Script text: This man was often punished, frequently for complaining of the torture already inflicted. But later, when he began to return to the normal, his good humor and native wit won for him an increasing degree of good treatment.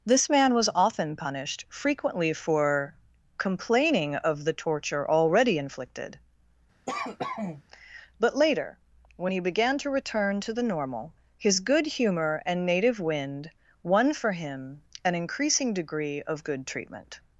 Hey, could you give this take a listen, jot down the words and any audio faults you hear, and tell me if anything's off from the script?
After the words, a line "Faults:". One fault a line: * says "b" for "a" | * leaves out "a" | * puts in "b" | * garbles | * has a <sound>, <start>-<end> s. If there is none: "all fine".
This man was often punished, frequently for complaining of the torture already inflicted. But later, when he began to return to the normal, his good humor and native wind won for him an increasing degree of good treatment.
Faults:
* has a cough, 6.9-7.6 s
* says "wind" for "wit"